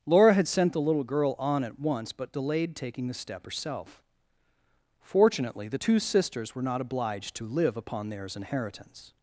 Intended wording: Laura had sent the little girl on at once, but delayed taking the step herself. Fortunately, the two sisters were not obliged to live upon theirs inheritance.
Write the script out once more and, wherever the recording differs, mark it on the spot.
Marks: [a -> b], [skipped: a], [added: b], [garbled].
Laura had sent the little girl on at once, but delayed taking the step herself. Fortunately, the two sisters were not obliged to live upon theirs inheritance.